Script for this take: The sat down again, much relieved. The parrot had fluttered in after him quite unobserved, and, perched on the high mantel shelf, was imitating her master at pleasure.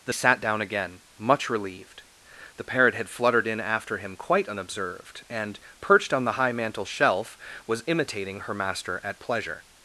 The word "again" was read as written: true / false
true